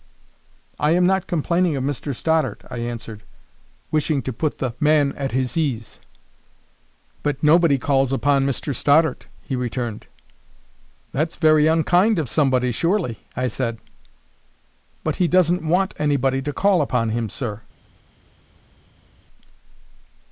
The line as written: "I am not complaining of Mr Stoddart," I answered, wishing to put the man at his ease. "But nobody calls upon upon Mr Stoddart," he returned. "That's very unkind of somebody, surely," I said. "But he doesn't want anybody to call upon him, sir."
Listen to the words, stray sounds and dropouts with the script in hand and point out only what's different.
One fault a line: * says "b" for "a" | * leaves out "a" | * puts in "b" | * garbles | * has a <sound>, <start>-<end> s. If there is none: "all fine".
* leaves out "upon"